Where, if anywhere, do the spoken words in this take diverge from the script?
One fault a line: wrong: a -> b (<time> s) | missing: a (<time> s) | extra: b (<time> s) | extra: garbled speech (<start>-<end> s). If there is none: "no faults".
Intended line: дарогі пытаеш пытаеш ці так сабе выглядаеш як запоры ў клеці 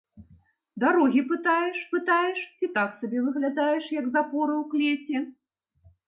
no faults